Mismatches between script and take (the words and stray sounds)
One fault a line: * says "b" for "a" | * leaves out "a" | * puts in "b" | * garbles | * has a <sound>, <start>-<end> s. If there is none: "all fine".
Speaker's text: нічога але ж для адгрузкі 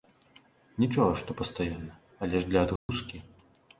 * puts in "што пастаянна"
* has a dropout, 2.8-2.9 s